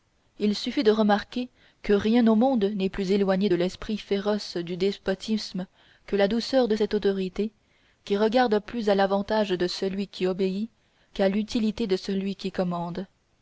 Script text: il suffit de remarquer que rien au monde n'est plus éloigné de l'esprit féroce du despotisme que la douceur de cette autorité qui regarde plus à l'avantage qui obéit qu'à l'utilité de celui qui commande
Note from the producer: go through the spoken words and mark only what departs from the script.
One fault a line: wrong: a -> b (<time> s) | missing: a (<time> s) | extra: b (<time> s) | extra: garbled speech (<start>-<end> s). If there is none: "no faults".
extra: de celui (9.5 s)